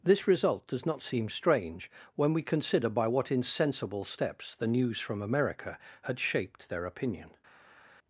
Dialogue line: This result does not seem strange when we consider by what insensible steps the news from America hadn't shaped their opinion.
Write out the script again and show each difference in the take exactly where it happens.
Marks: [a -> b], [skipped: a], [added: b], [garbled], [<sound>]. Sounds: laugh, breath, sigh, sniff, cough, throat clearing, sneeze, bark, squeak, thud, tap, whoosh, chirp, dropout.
This result does not seem strange when we consider by what insensible steps the news from America [hadn't -> had] shaped their opinion.